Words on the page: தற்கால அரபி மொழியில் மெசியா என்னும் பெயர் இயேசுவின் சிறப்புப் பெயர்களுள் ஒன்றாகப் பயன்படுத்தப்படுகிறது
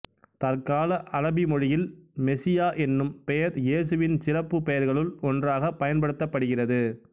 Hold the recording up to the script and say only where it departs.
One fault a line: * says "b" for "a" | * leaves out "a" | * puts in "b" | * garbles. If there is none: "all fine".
all fine